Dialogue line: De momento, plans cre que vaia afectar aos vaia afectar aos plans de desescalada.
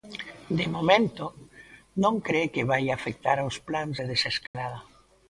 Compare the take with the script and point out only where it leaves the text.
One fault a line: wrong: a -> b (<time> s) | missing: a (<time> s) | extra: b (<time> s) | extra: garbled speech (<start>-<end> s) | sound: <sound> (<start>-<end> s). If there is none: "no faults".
wrong: plans -> non (2.0 s)
missing: vaia afectar aos (3.6 s)
sound: dropout (4.5-4.5 s)